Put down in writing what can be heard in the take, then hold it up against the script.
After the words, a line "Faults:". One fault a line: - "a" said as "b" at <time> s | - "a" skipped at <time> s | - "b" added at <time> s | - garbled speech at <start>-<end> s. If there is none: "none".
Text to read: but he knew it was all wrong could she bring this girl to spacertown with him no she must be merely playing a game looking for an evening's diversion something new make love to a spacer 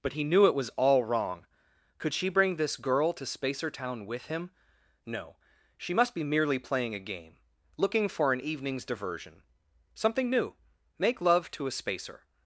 but he knew it was all wrong could she bring this girl to spacertown with him no she must be merely playing a game looking for an evening's diversion something new make love to a spacer
Faults:
none